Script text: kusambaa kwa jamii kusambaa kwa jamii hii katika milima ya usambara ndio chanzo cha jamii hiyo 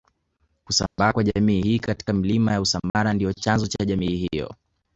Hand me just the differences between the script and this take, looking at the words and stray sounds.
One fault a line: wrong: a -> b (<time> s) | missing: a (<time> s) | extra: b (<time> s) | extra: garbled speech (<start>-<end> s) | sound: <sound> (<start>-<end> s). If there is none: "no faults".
sound: dropout (0.9-1.0 s)
missing: kusambaa kwa jamii (1.6 s)
sound: dropout (2.9-2.9 s)